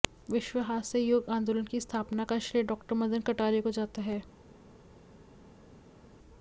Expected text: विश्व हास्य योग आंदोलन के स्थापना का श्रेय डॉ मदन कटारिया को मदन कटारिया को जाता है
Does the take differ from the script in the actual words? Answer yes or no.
yes